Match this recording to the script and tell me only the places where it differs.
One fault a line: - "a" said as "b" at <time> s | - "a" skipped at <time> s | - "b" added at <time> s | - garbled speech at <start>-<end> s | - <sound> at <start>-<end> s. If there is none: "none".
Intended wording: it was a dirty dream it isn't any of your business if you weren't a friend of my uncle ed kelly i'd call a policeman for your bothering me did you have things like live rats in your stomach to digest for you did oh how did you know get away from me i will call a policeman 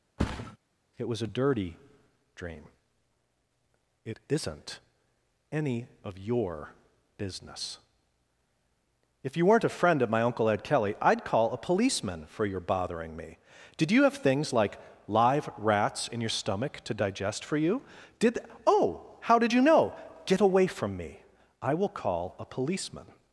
- thud at 0.2-0.6 s